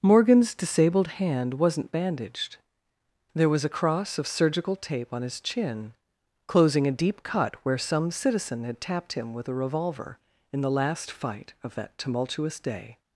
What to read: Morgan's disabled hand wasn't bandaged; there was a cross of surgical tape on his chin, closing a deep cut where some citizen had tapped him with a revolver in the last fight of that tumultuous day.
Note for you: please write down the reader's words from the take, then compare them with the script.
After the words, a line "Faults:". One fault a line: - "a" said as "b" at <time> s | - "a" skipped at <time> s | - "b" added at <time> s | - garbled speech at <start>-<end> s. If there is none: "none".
Morgan's disabled hand wasn't bandaged; there was a cross of surgical tape on his chin, closing a deep cut where some citizen had tapped him with a revolver in the last fight of that tumultuous day.
Faults:
none